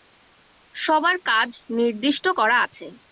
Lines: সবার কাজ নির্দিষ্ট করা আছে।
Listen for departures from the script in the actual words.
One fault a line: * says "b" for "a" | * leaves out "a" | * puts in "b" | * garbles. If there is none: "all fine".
all fine